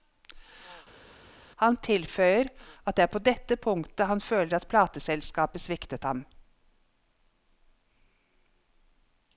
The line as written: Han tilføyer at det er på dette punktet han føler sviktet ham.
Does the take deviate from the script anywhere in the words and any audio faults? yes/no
yes